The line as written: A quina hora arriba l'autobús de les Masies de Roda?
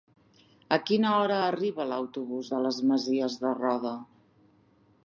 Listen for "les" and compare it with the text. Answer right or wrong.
right